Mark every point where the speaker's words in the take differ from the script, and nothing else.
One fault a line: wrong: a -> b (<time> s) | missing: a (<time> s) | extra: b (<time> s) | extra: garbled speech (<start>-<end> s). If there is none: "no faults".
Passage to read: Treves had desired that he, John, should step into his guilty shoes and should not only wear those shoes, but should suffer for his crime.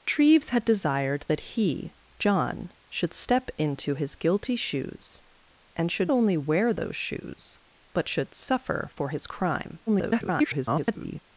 missing: not (6.1 s)
extra: garbled speech (9.9-11.2 s)